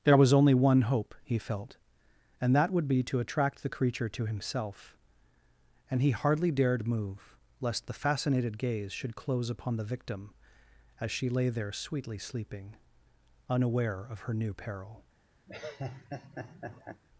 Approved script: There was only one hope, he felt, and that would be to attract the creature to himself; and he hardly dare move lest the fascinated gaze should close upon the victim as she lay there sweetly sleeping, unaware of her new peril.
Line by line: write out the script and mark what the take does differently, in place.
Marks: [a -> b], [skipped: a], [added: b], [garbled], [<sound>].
There was only one hope, he felt, and that would be to attract the creature to himself; and he hardly [dare -> dared] move lest the fascinated gaze should close upon the victim as she lay there sweetly sleeping, unaware of her new peril. [laugh]